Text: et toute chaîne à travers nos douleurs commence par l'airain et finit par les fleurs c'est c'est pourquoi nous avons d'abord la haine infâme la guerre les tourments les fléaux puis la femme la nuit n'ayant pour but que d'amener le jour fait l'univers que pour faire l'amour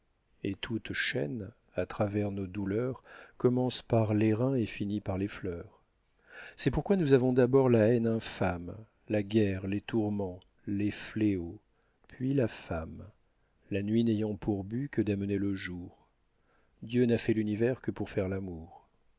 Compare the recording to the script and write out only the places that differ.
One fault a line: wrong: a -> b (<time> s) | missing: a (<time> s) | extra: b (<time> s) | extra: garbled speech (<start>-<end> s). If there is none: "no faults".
missing: c'est (6.7 s)
extra: dieu n'a (16.8 s)